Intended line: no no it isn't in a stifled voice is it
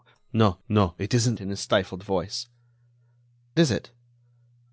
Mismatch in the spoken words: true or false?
false